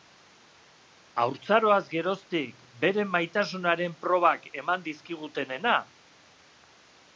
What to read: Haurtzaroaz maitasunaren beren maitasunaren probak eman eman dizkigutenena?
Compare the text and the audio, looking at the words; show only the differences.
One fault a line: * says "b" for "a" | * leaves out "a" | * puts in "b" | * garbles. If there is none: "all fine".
* says "geroztik" for "maitasunaren"
* leaves out "eman"